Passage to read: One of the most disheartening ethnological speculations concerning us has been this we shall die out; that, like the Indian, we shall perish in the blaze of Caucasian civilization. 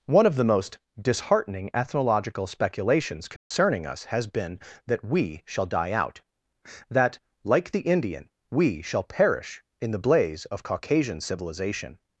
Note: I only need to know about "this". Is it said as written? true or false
false